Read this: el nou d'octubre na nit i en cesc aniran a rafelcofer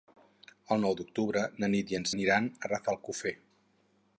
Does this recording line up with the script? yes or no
no